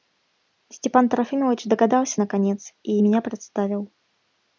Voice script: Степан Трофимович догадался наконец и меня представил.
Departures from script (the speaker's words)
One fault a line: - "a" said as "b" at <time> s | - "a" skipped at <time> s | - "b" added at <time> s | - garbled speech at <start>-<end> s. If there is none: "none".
none